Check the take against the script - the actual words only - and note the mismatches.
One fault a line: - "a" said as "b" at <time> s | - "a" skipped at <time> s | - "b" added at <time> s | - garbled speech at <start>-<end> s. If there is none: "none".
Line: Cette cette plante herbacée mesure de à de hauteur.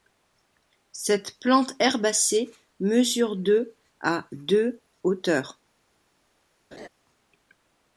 - "cette" skipped at 1.4 s